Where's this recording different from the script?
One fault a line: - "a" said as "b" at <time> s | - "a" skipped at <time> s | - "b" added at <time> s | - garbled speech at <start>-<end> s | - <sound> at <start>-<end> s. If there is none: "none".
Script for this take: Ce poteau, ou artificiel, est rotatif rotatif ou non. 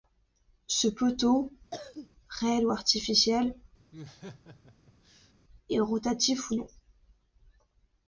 - cough at 1.7-2.1 s
- "réel" added at 2.3 s
- laugh at 3.9-5.3 s
- "rotatif" skipped at 6.5 s